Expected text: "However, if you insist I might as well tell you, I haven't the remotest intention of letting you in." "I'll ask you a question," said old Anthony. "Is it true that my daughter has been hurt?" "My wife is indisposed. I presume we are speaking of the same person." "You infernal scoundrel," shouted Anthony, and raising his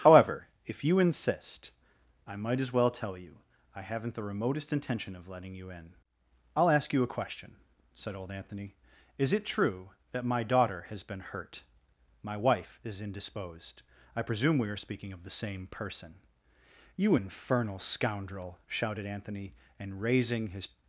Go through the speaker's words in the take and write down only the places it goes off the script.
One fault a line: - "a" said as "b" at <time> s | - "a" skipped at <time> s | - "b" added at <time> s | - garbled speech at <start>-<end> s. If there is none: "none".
none